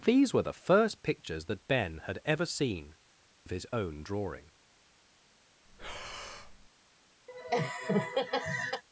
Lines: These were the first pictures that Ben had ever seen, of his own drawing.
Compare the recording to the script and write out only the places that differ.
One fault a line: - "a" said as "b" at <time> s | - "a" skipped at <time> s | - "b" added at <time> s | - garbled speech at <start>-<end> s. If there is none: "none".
none